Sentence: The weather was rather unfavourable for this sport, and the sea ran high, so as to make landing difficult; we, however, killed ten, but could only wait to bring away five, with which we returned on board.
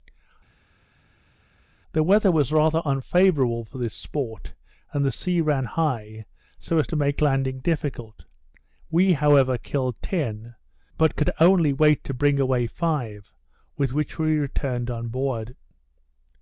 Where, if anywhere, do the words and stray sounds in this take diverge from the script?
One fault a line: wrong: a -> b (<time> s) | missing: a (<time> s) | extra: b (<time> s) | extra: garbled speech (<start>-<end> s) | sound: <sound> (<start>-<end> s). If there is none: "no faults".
no faults